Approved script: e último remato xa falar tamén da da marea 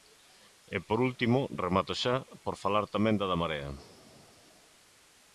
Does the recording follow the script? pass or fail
fail